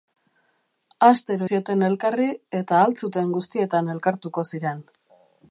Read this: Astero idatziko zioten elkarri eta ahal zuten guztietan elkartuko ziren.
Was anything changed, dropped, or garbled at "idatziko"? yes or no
yes